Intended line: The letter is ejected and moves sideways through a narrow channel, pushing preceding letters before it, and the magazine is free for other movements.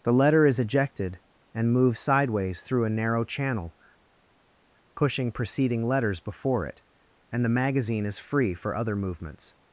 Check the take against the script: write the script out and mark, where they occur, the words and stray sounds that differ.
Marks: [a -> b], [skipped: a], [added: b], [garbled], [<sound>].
The letter is ejected and moves sideways through a narrow channel, pushing preceding letters before it, and the magazine is free for other movements.